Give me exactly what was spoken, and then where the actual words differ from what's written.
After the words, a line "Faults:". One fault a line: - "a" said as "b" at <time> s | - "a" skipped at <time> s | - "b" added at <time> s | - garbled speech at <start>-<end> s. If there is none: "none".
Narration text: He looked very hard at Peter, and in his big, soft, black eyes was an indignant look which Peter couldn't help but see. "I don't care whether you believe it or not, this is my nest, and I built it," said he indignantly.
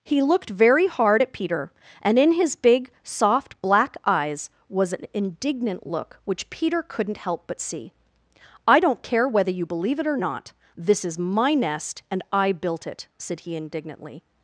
He looked very hard at Peter, and in his big, soft, black eyes was an indignant look which Peter couldn't help but see. "I don't care whether you believe it or not, this is my nest, and I built it," said he indignantly.
Faults:
none